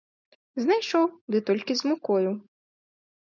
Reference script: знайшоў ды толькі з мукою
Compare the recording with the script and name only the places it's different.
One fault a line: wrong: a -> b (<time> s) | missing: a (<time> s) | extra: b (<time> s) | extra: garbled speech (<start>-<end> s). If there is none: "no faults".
no faults